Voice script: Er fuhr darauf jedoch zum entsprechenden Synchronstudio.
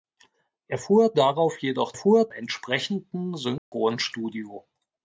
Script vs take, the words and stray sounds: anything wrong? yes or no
yes